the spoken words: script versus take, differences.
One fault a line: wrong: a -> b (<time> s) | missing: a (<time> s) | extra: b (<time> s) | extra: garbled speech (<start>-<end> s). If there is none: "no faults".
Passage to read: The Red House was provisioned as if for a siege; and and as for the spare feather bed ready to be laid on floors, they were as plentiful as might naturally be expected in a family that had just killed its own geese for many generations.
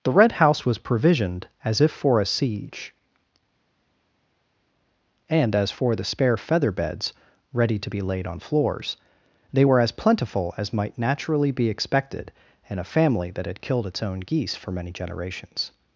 missing: and (5.5 s)
wrong: bed -> beds (6.7 s)
missing: just (13.6 s)